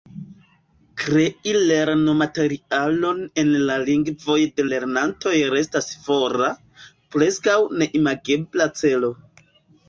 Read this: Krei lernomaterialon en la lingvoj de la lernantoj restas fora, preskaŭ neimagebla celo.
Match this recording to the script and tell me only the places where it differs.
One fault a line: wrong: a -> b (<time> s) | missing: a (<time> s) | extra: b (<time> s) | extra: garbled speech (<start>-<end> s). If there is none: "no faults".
missing: la (4.7 s)